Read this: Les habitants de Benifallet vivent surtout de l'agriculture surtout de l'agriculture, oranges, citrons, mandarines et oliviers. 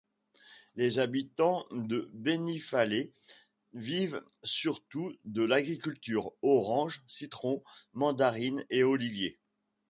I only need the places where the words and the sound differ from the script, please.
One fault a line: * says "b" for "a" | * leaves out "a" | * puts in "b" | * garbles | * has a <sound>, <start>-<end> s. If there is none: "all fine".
* leaves out "surtout de l'agriculture"